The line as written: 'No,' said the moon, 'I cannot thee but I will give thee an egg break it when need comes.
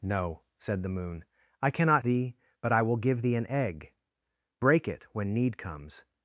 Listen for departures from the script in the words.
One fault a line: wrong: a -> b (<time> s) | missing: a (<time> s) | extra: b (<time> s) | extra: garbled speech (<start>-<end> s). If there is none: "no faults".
no faults